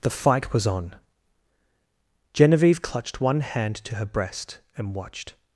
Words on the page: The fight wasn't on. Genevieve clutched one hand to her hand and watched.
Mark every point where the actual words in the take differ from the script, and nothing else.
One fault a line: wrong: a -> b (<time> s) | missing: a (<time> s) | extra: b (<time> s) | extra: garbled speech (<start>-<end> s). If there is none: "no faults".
wrong: wasn't -> was (0.5 s)
wrong: hand -> breast (4.0 s)